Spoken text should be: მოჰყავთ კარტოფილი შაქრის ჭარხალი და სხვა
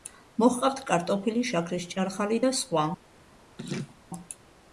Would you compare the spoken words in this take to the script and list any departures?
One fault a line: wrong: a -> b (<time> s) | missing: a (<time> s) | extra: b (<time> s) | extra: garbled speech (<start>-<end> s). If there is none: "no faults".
no faults